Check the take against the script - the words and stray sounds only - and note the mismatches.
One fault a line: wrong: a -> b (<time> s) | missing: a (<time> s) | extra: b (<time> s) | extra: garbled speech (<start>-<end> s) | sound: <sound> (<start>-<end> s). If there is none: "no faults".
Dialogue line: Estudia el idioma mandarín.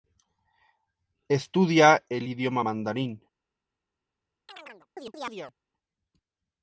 sound: chirp (4.5-5.5 s)